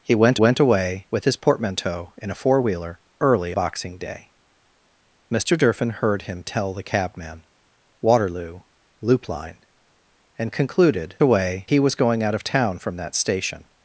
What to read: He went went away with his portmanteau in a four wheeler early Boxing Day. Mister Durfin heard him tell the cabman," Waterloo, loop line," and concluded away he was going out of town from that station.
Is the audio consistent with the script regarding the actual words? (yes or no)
yes